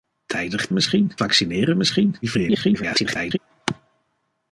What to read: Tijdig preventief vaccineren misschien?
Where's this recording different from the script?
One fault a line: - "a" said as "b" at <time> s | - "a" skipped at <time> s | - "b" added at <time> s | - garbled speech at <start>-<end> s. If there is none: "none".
- "preventief" said as "misschien" at 0.7 s
- garbled speech at 2.2-3.4 s